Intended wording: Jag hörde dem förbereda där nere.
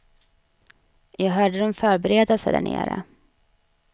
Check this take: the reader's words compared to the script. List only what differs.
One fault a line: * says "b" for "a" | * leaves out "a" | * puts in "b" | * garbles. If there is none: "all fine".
* puts in "sig"